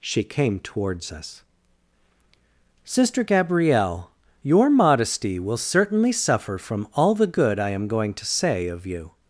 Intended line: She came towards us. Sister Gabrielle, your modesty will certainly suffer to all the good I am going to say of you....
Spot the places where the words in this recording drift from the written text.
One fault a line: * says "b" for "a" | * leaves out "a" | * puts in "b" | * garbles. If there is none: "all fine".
* says "from" for "to"